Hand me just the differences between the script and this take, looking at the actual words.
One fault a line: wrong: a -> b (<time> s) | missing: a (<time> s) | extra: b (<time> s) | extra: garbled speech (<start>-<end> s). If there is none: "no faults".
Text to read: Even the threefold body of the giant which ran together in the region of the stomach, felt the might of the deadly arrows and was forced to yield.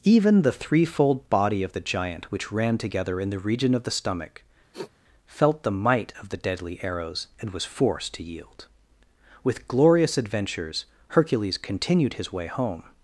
extra: With glorious adventures Hercules continued his way home (9.4 s)